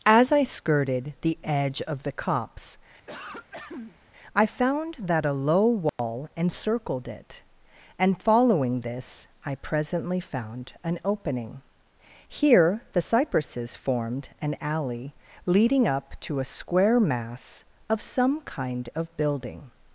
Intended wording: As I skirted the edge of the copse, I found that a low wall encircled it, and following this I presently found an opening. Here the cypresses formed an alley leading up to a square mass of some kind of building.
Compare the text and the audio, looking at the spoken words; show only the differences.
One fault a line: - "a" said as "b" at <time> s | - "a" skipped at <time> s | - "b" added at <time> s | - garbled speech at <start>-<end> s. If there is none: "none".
none